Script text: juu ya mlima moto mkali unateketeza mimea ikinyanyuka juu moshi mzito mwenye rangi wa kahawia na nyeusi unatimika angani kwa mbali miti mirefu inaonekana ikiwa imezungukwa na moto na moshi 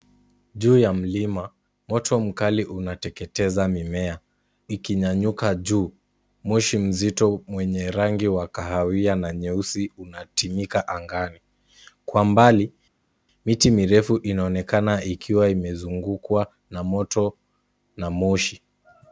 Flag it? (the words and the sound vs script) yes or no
no